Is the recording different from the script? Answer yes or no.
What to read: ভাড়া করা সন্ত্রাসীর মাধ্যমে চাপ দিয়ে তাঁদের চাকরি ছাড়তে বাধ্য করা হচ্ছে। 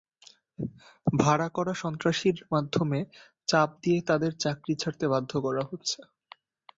no